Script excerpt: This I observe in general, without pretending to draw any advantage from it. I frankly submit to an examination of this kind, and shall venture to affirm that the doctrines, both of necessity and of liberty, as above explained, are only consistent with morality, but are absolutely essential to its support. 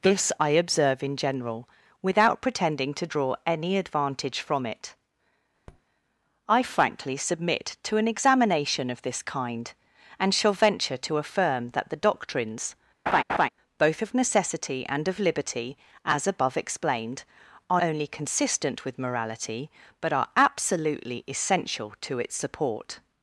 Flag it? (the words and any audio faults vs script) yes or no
yes